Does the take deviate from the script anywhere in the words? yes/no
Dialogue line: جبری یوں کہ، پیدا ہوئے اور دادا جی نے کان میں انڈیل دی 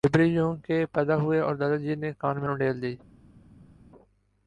no